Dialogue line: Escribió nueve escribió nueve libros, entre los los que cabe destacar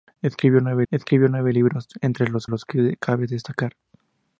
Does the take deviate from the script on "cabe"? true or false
false